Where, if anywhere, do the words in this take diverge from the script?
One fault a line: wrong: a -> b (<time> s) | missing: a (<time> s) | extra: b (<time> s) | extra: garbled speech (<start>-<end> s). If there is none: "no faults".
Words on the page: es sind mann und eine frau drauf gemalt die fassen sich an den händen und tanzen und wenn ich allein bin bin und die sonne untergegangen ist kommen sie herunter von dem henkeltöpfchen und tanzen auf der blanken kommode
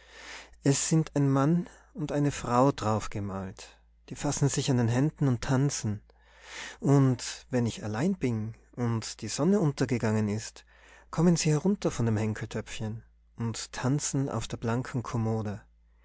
extra: ein (1.1 s)
missing: bin (8.5 s)